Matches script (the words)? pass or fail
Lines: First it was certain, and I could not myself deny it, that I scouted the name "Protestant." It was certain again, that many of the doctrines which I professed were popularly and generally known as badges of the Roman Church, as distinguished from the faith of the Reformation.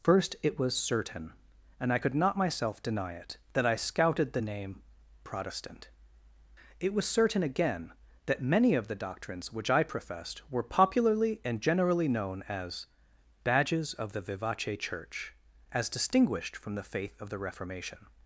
fail